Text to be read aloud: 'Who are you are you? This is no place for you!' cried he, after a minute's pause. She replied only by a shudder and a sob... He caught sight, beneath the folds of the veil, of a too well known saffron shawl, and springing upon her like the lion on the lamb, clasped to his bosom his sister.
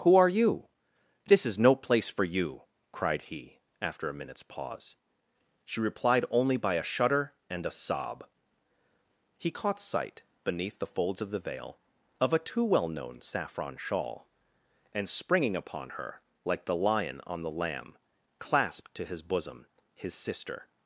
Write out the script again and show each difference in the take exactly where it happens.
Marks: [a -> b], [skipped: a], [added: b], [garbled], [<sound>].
'Who are you [skipped: are you?] This is no place for you!' cried he, after a minute's pause. She replied only by a shudder and a sob... He caught sight, beneath the folds of the veil, of a too well known saffron shawl, and springing upon her like the lion on the lamb, clasped to his bosom his sister.